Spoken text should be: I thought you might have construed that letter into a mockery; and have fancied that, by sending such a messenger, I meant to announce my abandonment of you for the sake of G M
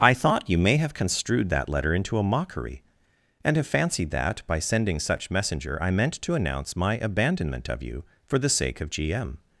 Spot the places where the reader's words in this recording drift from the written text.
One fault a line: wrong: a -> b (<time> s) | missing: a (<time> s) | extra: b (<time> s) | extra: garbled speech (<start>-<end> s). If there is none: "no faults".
wrong: might -> may (0.6 s)
missing: a (5.3 s)